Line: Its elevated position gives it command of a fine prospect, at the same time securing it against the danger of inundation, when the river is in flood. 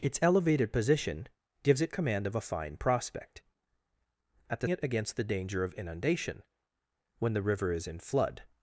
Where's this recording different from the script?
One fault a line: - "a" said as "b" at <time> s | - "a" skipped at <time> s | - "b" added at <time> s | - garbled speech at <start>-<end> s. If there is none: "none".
- "same time securing" skipped at 4.7 s